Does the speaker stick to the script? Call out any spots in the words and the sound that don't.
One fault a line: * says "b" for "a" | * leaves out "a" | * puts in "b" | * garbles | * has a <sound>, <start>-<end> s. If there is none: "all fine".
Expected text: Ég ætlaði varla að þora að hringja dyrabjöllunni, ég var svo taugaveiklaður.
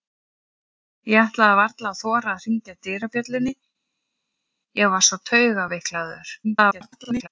* garbles